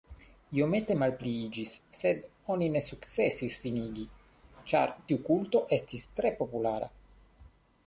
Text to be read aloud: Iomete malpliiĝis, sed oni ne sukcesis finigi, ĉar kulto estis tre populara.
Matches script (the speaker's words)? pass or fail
fail